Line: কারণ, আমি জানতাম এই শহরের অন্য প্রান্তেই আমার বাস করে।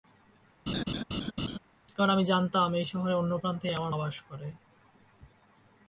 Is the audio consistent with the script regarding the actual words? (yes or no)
yes